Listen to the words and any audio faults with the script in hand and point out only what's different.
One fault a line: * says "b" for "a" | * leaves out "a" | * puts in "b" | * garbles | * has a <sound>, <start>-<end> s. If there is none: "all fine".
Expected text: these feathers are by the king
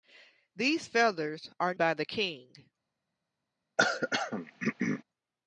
* has a throat clearing, 3.8-5.0 s